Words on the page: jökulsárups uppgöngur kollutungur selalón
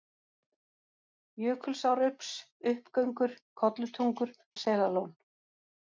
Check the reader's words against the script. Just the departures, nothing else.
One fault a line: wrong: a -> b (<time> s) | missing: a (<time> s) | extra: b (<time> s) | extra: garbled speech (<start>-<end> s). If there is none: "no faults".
no faults